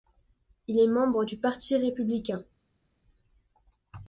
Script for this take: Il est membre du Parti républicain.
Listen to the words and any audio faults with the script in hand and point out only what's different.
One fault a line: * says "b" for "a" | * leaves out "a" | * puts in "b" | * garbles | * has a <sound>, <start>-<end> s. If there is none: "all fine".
all fine